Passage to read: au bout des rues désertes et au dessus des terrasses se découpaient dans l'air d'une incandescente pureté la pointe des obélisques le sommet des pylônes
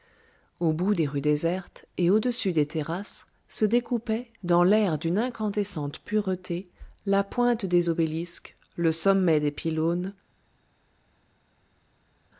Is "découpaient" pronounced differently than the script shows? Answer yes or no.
no